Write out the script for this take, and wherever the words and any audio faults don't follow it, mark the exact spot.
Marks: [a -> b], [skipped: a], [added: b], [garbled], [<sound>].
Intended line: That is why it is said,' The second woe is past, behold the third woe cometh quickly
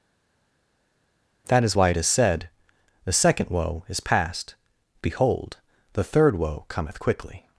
That is why it is said,' The second woe is past, behold the third woe cometh quickly